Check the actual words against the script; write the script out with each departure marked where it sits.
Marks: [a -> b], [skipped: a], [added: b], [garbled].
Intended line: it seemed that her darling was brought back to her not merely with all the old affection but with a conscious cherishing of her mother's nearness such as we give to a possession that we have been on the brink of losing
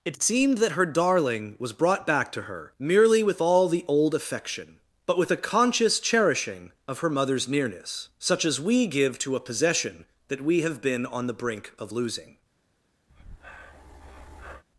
it seemed that her darling was brought back to her [skipped: not] merely with all the old affection but with a conscious cherishing of her mother's nearness such as we give to a possession that we have been on the brink of losing